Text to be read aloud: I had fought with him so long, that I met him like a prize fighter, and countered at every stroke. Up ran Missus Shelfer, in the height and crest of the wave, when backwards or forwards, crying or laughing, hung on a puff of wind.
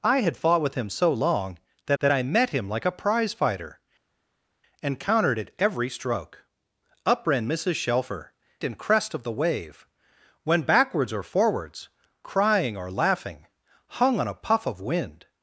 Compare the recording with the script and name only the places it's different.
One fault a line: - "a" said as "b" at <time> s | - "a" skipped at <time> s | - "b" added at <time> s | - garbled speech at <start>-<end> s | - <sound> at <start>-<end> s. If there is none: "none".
- "that" added at 2.0 s
- "in the height" skipped at 8.3 s